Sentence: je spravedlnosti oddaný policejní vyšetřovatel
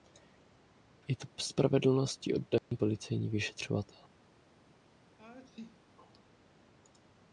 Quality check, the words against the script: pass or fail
fail